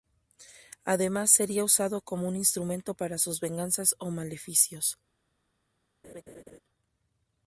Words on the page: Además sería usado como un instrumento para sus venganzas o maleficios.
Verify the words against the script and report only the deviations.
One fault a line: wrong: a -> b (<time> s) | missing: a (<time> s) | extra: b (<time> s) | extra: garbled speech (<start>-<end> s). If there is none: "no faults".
no faults